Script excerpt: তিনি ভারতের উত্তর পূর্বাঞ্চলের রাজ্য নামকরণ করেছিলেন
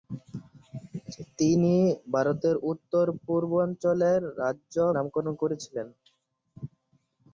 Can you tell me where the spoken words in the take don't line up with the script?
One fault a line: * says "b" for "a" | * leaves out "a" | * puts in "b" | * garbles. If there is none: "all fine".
all fine